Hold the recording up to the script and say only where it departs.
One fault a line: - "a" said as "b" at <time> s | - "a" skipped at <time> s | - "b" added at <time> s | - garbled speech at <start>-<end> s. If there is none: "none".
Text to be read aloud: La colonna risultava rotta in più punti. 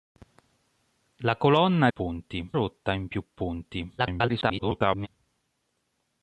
- "risultava" said as "punti" at 1.9 s
- garbled speech at 4.0-5.1 s